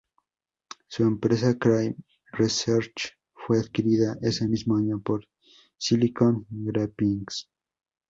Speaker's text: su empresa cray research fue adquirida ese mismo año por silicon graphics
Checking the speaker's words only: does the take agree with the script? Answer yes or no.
yes